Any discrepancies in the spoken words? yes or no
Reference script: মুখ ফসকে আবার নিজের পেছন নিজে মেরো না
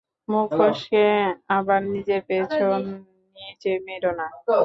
no